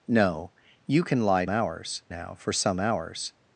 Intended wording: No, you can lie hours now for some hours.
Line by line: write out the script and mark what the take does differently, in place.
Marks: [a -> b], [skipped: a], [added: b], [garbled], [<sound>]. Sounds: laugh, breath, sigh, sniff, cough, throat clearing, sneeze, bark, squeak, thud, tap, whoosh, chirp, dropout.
No, you can lie hours now for some hours.